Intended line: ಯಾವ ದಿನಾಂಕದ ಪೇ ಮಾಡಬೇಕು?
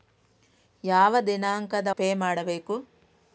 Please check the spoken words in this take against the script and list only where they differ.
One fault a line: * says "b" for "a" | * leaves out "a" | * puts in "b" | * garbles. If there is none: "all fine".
all fine